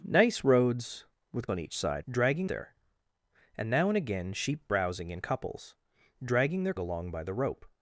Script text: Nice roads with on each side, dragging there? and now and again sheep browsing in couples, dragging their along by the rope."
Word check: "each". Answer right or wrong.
right